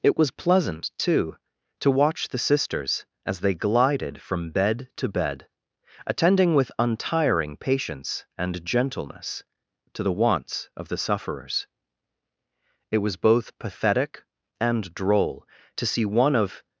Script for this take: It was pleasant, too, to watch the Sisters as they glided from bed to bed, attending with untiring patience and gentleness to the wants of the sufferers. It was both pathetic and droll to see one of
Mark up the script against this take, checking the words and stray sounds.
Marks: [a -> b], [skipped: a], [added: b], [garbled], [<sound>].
It was pleasant, too, to watch the Sisters as they glided from bed to bed, attending with untiring patience and gentleness to the wants of the sufferers. It was both pathetic and droll to see one of